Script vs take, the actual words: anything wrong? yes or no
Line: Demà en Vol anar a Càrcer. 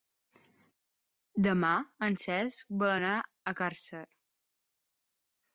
yes